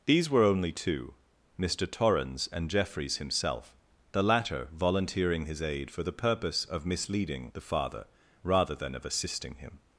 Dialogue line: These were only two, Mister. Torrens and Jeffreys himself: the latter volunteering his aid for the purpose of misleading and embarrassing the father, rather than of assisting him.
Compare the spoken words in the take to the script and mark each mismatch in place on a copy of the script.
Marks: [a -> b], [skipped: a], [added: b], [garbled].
These were only two, Mister. Torrens and Jeffreys himself: the latter volunteering his aid for the purpose of misleading [skipped: and embarrassing] the father, rather than of assisting him.